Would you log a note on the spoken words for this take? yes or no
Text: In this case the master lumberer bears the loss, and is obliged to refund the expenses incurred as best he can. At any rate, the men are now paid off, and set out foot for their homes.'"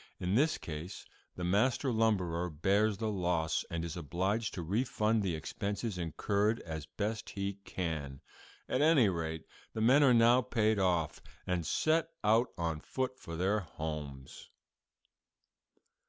yes